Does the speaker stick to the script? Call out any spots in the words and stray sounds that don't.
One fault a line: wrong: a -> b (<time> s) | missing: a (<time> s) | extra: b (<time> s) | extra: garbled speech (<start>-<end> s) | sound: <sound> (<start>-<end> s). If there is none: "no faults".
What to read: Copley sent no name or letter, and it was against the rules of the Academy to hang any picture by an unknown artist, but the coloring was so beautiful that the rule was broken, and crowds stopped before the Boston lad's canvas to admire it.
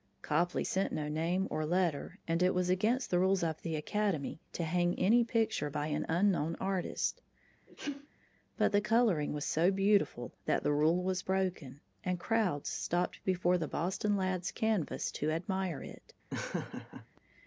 sound: sneeze (7.7-8.1 s)
sound: laugh (16.3-17.1 s)